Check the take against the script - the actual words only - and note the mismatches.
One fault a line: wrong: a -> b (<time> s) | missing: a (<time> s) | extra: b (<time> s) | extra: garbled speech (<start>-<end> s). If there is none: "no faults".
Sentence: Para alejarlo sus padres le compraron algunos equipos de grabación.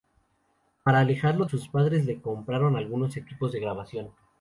no faults